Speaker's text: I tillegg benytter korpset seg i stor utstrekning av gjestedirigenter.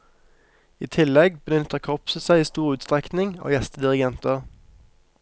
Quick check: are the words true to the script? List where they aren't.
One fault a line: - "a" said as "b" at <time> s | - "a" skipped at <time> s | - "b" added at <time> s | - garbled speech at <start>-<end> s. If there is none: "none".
none